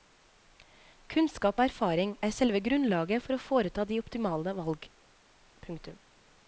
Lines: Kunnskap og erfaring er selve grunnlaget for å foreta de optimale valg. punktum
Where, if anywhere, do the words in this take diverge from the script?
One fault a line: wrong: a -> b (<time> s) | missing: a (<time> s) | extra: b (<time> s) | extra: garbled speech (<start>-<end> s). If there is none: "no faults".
no faults